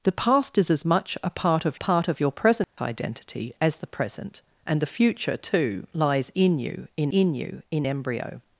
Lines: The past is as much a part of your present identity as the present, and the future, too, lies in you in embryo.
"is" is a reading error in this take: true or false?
false